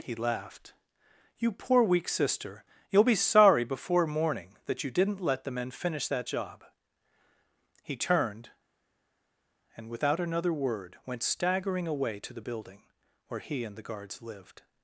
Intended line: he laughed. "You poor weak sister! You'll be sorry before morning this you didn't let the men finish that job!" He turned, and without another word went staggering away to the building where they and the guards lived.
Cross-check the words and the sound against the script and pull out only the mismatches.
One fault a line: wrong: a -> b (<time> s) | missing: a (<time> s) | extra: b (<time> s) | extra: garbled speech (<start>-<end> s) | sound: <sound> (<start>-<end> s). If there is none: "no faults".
wrong: this -> that (4.7 s)
wrong: they -> he (13.4 s)